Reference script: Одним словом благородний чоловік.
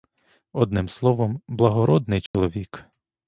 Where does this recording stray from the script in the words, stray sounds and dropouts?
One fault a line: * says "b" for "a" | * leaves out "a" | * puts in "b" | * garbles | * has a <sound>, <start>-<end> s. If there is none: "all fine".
* has a dropout, 2.3-2.3 s